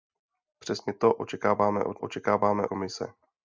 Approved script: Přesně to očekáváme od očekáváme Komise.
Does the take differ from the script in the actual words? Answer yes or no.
no